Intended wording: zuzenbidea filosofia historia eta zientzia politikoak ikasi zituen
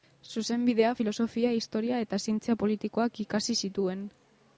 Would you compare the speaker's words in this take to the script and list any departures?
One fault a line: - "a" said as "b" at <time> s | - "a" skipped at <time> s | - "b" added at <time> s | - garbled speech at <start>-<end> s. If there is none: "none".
none